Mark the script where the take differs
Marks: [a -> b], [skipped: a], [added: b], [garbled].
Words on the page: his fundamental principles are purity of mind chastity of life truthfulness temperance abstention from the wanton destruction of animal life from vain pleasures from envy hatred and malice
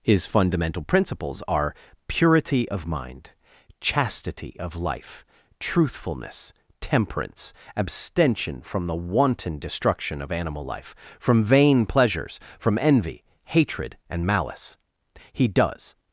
his fundamental principles are purity of mind chastity of life truthfulness temperance abstention from the wanton destruction of animal life from vain pleasures from envy hatred and malice [added: he does]